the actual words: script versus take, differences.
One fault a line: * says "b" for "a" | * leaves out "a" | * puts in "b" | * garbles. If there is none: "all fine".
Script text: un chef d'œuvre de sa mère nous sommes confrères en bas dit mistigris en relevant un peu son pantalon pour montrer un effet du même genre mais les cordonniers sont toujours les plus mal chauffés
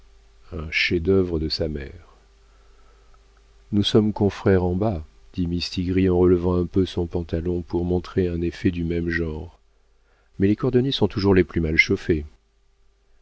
all fine